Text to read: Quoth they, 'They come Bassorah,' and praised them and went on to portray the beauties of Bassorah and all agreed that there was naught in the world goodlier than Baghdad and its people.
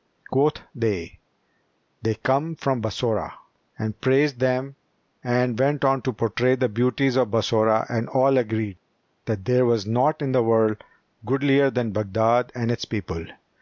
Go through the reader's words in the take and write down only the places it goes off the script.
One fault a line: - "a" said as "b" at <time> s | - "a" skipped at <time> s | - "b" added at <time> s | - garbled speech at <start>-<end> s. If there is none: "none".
- "from" added at 2.5 s